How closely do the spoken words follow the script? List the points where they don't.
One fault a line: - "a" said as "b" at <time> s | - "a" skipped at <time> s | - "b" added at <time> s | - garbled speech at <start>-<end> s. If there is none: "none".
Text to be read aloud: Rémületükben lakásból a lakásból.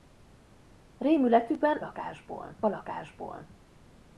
none